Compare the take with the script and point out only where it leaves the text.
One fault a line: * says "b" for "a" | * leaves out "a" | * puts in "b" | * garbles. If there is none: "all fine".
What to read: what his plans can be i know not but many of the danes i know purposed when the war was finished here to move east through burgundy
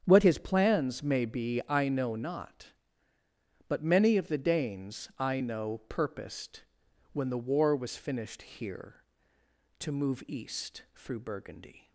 * says "may" for "can"